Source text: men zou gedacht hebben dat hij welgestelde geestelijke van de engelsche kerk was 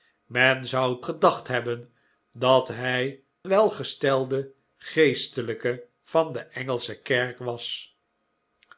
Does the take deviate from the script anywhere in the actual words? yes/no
no